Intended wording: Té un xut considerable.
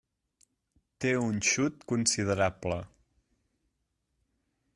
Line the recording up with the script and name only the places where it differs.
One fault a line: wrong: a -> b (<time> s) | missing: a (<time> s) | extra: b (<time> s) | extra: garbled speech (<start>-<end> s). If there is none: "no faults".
no faults